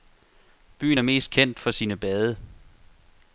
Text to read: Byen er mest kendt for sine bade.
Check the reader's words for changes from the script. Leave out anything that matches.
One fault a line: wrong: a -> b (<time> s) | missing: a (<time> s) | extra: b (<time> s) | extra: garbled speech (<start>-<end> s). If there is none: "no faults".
no faults